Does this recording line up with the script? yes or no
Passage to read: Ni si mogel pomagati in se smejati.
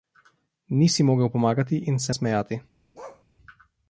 yes